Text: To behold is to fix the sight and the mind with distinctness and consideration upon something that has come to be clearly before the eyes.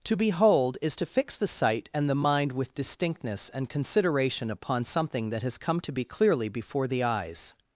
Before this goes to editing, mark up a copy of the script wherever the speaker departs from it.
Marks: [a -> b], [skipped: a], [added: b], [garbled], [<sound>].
To behold is to fix the sight and the mind with distinctness and consideration upon something that has come to be clearly before the eyes.